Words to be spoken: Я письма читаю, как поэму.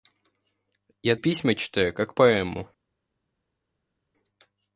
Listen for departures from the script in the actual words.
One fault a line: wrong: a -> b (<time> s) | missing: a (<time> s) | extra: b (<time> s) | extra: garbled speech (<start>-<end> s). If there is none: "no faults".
no faults